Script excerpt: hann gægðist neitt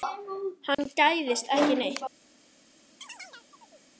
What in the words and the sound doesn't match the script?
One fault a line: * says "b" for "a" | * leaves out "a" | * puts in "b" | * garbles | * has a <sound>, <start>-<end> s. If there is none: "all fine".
* has a dropout, 0.7-0.8 s
* puts in "ekki"
* has a chirp, 3.0-3.9 s